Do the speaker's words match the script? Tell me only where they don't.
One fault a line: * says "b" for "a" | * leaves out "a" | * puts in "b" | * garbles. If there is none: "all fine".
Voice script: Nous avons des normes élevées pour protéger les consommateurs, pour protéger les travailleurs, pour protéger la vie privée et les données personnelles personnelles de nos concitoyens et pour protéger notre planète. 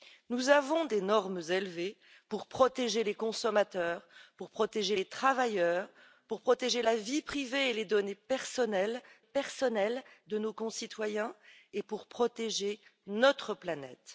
all fine